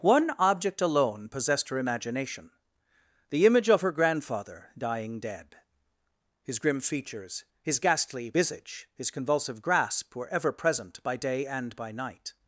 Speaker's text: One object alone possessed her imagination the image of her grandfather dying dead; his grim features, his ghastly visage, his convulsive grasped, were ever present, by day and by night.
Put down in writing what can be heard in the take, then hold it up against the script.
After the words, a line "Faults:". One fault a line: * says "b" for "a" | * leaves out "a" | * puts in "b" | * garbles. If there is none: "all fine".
One object alone possessed her imagination the image of her grandfather dying dead; his grim features, his ghastly visage, his convulsive grasp, were ever present, by day and by night.
Faults:
* says "grasp" for "grasped"